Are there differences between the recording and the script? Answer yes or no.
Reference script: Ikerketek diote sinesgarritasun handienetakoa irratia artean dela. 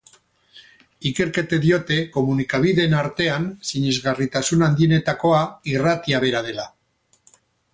yes